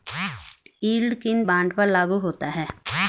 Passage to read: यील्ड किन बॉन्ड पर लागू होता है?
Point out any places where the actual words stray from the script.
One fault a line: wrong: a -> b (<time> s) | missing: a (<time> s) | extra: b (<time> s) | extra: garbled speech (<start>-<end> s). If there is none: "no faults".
no faults